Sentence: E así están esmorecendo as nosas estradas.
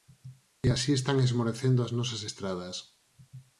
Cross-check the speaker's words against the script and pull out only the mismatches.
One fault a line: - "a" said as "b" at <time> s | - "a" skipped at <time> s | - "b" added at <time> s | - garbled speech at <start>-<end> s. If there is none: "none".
none